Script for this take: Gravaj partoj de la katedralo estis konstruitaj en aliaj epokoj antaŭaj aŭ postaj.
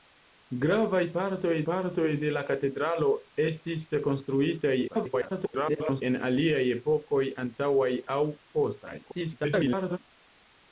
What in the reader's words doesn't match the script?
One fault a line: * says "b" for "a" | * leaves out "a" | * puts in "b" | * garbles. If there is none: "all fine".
* puts in "partoj"
* garbles
* garbles